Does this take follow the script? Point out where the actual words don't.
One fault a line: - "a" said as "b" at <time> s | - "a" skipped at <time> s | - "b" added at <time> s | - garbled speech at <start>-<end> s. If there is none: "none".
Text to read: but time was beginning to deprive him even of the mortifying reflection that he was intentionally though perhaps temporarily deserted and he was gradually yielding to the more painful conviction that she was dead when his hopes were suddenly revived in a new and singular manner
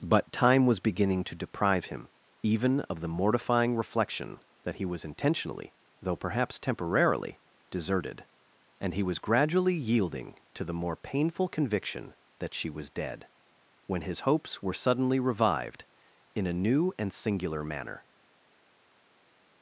none